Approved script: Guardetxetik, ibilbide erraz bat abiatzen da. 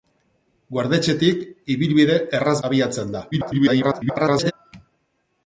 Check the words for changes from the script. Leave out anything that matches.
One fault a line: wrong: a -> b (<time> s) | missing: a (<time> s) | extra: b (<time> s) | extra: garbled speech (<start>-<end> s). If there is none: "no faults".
missing: bat (2.6 s)
extra: garbled speech (3.3-4.5 s)